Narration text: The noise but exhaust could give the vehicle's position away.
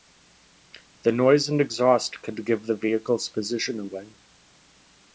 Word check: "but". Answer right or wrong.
wrong